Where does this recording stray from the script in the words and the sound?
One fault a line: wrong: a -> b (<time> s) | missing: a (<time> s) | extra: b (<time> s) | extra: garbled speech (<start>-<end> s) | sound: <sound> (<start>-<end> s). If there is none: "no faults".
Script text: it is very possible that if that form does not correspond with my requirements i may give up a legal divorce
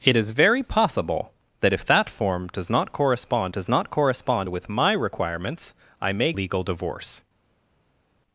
extra: does not correspond (3.5 s)
missing: give up a (6.3 s)